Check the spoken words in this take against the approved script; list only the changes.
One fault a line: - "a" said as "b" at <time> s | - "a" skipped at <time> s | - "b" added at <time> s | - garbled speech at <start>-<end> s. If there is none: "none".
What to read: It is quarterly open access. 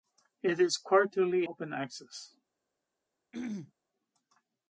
none